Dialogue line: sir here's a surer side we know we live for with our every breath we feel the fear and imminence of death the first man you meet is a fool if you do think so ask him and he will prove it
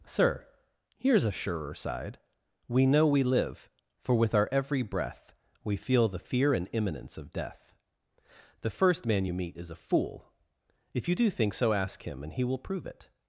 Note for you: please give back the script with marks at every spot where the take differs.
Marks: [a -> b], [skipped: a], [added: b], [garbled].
sir here's a surer side we know we live for with our every breath we feel the fear and imminence of death the first man you meet is a fool if you do think so ask him and he will prove it